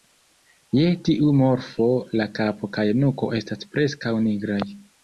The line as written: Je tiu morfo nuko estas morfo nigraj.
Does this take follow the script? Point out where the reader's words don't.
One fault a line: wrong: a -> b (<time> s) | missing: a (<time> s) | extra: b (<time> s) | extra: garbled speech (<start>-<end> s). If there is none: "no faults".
extra: la kapo kaj (2.2 s)
wrong: morfo -> preskaŭ (3.8 s)